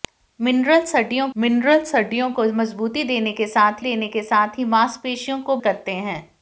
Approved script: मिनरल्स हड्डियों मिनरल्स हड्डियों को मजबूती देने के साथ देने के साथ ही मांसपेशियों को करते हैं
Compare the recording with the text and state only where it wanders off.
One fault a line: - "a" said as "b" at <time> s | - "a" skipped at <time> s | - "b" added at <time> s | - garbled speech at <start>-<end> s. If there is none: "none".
none